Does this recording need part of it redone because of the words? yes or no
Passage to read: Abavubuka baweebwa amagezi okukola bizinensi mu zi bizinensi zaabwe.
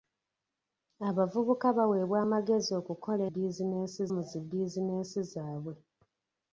no